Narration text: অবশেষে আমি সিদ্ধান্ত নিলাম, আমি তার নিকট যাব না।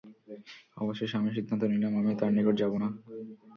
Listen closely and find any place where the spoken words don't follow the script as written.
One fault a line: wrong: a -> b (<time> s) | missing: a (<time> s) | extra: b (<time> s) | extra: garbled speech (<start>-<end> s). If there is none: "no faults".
no faults